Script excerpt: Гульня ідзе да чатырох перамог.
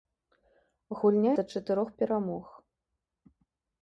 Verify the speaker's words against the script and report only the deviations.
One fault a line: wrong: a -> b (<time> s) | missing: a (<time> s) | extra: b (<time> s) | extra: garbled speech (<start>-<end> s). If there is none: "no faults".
missing: ідзе (1.3 s)